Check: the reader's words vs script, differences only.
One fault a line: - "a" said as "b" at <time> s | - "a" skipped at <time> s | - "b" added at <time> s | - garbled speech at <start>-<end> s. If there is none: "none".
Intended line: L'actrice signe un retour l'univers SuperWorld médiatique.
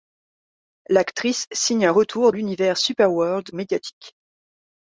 none